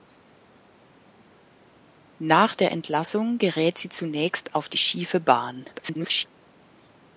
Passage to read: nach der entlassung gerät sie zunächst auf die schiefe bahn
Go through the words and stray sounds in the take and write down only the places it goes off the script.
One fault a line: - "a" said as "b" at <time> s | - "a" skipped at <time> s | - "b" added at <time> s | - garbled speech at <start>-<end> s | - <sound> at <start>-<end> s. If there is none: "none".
- garbled speech at 5.7-6.3 s